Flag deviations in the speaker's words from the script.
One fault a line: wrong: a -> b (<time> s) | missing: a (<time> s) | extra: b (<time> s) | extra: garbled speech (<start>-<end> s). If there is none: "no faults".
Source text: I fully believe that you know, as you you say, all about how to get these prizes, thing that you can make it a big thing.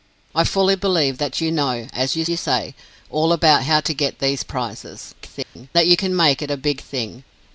no faults